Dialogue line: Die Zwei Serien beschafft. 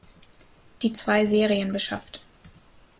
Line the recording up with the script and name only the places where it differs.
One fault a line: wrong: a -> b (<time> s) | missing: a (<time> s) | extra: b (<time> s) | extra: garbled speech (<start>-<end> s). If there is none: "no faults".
no faults